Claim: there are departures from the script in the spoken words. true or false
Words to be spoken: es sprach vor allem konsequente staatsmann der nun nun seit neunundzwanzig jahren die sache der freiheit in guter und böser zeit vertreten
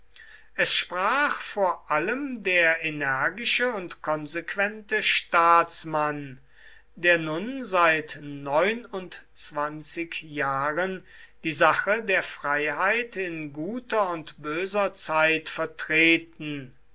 true